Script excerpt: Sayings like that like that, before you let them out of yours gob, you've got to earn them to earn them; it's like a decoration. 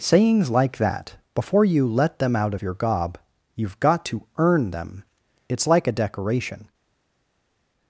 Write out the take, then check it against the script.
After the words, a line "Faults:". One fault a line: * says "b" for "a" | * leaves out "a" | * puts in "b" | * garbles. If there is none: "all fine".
Sayings like that, before you let them out of your gob, you've got to earn them; it's like a decoration.
Faults:
* leaves out "like that"
* says "your" for "yours"
* leaves out "to earn them"